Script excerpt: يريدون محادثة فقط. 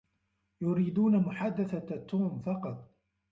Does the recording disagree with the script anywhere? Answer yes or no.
yes